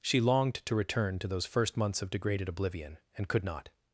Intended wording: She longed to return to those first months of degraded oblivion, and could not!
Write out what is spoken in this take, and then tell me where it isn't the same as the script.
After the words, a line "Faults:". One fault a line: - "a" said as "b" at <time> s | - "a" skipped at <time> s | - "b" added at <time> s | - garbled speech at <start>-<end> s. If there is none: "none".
She longed to return to those first months of degraded oblivion, and could not!
Faults:
none